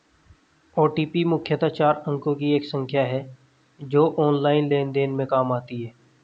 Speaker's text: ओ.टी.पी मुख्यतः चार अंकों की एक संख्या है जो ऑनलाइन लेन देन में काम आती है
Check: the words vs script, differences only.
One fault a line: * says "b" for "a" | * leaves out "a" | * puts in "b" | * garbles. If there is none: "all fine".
all fine